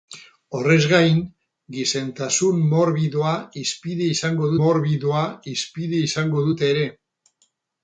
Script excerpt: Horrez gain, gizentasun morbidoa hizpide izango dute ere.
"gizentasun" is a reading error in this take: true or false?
false